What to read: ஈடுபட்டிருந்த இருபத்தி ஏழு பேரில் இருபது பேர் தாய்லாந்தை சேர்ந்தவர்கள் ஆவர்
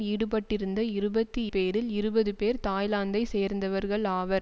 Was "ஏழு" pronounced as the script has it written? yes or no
no